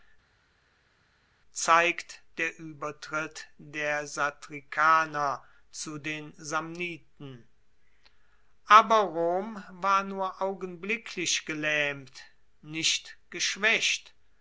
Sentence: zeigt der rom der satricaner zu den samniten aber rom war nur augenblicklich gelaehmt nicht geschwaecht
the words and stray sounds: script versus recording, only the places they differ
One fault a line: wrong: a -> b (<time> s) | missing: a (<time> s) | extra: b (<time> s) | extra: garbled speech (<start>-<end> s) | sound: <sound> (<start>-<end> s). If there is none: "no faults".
wrong: rom -> uebertritt (2.6 s)